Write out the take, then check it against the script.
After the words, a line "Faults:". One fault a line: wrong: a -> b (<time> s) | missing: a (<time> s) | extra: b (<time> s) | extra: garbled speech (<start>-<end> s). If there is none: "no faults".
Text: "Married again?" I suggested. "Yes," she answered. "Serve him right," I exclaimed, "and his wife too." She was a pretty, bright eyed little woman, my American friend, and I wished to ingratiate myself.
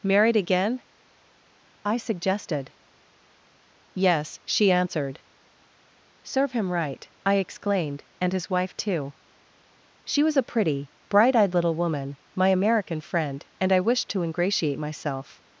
"Married again?" I suggested. "Yes," she answered. "Serve him right," I exclaimed, "and his wife too." She was a pretty, bright eyed little woman, my American friend, and I wished to ingratiate myself.
Faults:
no faults